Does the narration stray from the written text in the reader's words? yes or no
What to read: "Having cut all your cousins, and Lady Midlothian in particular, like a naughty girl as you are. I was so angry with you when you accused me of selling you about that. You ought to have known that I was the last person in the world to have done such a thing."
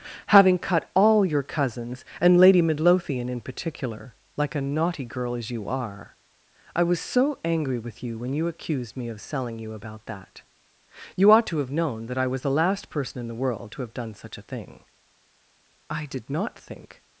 yes